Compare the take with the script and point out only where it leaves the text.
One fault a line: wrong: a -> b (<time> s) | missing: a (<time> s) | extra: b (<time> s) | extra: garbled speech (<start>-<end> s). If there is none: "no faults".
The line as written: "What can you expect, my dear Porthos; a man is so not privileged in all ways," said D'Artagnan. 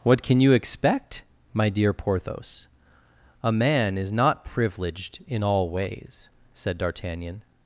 missing: so (4.1 s)